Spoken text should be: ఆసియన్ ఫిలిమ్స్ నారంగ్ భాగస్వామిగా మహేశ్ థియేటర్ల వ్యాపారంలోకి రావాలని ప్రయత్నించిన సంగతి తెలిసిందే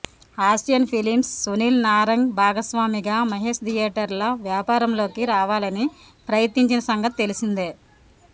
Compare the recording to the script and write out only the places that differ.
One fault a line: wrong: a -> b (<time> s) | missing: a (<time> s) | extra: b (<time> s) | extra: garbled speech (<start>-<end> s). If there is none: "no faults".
extra: సునీల్ (1.4 s)